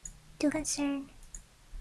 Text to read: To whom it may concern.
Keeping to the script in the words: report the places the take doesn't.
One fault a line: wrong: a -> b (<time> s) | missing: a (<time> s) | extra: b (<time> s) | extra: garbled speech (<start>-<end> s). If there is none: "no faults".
missing: whom it may (0.5 s)